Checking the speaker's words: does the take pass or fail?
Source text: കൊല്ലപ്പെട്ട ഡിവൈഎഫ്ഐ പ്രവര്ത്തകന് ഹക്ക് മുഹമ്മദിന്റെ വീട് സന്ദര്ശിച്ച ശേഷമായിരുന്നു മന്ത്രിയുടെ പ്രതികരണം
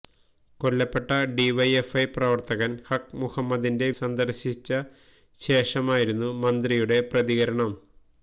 fail